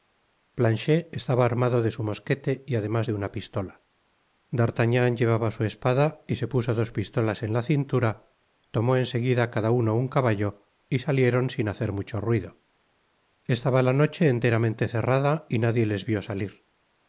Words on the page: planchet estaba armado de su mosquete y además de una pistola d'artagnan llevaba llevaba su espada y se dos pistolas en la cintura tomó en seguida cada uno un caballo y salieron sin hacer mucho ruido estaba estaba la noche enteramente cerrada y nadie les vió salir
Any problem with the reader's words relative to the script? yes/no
yes